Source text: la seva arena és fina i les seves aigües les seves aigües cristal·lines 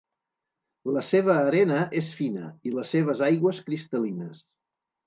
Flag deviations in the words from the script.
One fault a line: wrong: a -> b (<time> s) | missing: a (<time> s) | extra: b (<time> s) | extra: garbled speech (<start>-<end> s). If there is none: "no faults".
missing: les seves aigües (3.6 s)